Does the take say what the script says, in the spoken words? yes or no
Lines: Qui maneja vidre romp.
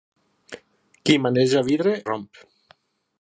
yes